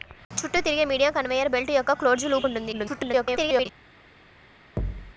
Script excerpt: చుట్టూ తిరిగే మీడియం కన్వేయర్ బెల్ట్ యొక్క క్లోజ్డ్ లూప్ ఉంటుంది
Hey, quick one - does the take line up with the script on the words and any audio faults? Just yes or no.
no